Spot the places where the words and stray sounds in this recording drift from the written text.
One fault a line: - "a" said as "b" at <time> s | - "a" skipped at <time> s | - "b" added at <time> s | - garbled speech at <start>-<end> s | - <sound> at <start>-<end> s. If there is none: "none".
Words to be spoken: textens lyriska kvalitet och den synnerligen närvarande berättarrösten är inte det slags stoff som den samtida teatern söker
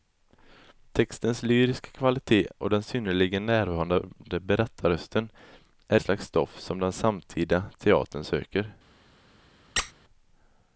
- "inte det" skipped at 6.0 s
- squeak at 9.8-9.9 s